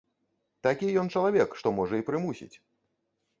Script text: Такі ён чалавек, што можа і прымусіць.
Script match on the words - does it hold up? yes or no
yes